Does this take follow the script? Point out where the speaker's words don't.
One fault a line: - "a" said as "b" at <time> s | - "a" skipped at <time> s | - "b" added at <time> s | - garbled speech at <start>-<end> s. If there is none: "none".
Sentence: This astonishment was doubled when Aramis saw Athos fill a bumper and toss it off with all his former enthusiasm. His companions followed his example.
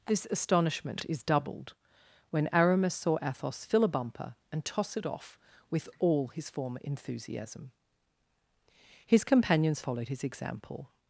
- "was" said as "is" at 1.1 s